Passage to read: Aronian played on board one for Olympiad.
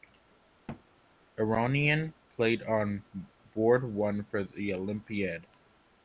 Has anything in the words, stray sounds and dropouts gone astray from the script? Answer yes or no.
yes